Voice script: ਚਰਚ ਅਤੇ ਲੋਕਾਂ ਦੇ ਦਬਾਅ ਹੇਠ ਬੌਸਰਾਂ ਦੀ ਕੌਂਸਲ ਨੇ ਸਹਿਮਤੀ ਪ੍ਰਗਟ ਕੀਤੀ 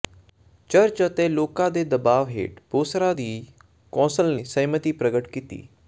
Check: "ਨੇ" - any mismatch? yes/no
yes